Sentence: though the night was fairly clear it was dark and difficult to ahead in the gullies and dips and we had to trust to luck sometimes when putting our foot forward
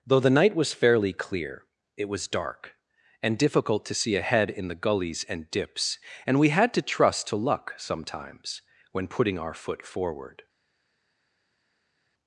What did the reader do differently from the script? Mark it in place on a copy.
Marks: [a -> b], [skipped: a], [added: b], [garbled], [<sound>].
though the night was fairly clear it was dark and difficult to [added: see] ahead in the gullies and dips and we had to trust to luck sometimes when putting our foot forward